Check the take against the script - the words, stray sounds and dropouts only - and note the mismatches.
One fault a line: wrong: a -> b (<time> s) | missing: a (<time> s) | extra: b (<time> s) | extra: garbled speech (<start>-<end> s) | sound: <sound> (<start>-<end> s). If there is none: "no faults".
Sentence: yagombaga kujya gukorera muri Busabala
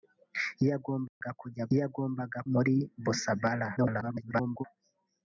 sound: dropout (1.1-1.2 s)
wrong: gukorera -> yagombaga (1.8 s)
extra: garbled speech (3.8-4.7 s)